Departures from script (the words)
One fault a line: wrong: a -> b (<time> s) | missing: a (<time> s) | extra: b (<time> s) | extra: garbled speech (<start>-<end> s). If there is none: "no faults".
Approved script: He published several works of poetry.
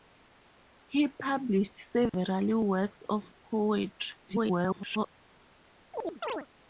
extra: garbled speech (4.2-5.1 s)